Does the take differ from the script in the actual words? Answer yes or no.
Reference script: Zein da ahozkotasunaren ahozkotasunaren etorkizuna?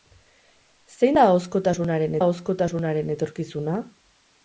no